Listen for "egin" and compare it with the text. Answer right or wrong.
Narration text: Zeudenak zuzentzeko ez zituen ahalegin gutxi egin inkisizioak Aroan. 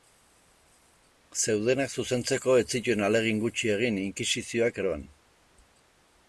right